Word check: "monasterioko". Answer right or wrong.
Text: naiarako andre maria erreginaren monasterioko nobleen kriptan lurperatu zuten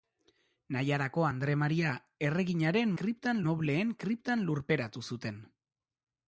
wrong